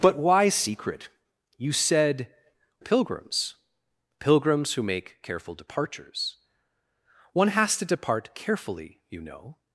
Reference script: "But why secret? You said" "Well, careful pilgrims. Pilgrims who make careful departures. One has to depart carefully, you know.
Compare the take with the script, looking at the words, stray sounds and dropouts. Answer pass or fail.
fail